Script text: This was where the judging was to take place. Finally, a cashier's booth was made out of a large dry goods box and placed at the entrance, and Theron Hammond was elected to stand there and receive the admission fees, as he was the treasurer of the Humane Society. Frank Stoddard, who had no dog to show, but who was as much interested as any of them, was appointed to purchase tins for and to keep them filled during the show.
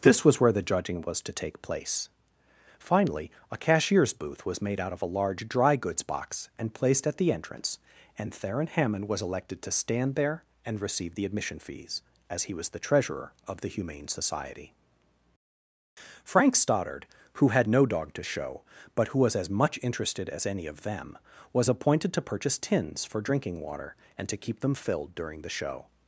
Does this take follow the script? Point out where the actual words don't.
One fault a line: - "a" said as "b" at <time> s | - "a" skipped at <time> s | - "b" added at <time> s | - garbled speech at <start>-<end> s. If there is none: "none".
- "drinking water" added at 23.2 s